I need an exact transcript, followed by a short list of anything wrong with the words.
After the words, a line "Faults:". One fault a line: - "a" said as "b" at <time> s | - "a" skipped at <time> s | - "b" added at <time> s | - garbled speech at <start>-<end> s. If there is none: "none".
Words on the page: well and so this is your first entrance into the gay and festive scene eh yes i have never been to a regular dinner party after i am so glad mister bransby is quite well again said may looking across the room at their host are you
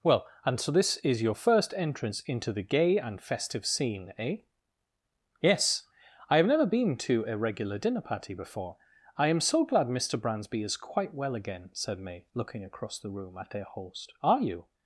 well and so this is your first entrance into the gay and festive scene eh yes i have never been to a regular dinner party before i am so glad mister bransby is quite well again said may looking across the room at their host are you
Faults:
- "after" said as "before" at 8.3 s